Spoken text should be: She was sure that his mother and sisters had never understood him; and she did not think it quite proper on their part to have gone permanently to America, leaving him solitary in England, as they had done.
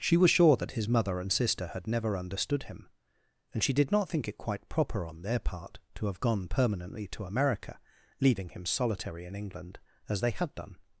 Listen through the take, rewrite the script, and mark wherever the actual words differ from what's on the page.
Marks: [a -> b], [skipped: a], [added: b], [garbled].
She was sure that his mother and [sisters -> sister] had never understood him; and she did not think it quite proper on their part to have gone permanently to America, leaving him solitary in England, as they had done.